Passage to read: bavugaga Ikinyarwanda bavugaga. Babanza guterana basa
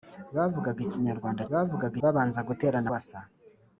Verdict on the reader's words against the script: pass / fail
pass